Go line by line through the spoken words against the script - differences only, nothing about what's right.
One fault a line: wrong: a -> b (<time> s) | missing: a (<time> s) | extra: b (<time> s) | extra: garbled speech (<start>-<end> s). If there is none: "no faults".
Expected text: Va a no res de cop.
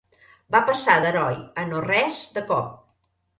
extra: passar d'heroi (0.7 s)